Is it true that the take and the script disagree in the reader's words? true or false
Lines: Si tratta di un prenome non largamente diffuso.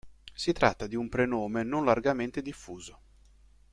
false